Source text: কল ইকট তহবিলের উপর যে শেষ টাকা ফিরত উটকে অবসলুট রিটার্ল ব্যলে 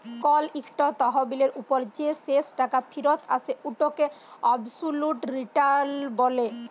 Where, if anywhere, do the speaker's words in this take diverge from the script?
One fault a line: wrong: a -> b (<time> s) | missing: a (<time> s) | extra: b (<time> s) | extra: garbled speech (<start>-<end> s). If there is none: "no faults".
extra: আসে (3.3 s)